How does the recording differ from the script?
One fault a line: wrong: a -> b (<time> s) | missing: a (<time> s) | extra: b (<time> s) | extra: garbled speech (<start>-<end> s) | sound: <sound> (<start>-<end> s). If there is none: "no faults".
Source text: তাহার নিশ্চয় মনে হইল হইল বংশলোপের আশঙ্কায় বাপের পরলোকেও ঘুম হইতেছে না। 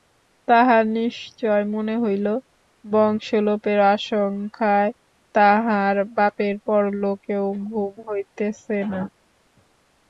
missing: হইল (2.3 s)
extra: তাহার (5.4 s)